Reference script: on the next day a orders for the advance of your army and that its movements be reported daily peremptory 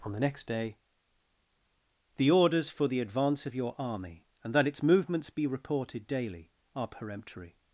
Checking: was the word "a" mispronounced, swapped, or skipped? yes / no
yes